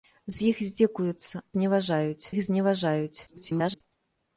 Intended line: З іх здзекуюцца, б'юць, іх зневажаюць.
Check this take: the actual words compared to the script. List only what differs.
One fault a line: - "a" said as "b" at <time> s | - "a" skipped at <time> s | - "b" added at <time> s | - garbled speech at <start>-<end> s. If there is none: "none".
- "б'юць" said as "зневажаюць" at 1.6 s
- garbled speech at 3.3-3.8 s